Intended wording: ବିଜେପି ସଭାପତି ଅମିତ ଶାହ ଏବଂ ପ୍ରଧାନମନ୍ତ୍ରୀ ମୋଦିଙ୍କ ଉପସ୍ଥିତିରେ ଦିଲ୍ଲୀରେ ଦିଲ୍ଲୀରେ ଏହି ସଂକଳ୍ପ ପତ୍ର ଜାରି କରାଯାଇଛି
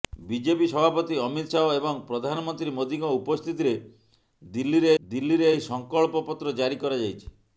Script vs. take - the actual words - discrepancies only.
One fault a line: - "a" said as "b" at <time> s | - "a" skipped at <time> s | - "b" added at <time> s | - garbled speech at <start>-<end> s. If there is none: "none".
none